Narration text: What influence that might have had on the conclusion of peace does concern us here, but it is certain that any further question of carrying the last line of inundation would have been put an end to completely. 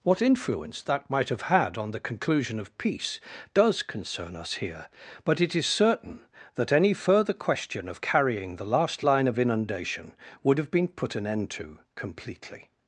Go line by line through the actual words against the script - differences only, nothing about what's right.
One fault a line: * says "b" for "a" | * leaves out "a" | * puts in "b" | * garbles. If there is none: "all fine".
all fine